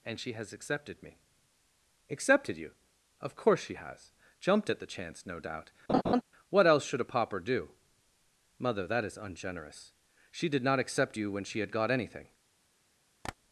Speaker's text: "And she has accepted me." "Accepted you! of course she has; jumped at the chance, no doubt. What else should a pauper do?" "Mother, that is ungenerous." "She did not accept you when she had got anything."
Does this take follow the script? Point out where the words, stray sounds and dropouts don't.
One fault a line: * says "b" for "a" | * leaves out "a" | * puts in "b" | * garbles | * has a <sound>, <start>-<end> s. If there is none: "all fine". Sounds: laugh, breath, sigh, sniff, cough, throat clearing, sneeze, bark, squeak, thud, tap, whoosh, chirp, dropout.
* has a laugh, 5.9-6.2 s
* has a tap, 13.2-13.4 s